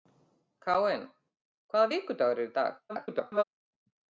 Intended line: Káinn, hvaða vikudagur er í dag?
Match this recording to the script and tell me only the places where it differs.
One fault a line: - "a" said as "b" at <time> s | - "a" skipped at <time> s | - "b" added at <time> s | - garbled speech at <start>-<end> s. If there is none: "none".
- garbled speech at 2.9-3.4 s